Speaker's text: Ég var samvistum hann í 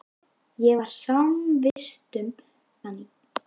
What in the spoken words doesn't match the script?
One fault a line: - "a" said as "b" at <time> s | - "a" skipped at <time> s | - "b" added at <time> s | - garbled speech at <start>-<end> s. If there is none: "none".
none